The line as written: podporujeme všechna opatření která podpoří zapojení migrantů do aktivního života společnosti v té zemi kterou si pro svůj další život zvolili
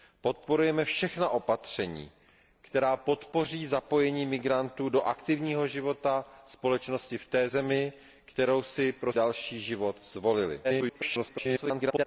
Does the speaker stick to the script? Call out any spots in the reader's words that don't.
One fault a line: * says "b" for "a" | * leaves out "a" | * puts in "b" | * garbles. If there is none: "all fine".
* leaves out "svůj"
* garbles